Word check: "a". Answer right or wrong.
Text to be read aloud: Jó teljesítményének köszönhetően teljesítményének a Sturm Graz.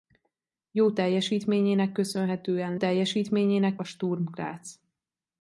right